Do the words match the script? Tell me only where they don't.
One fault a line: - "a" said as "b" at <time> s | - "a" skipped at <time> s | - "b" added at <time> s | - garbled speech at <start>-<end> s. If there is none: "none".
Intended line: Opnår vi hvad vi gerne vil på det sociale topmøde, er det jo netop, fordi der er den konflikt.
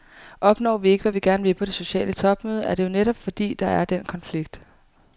- "ikke" added at 0.9 s